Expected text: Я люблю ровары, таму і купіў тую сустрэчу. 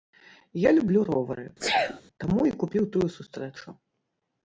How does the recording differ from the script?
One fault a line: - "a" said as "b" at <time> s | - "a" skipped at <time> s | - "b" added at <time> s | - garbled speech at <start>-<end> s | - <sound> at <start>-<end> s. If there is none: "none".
- sneeze at 1.6-2.0 s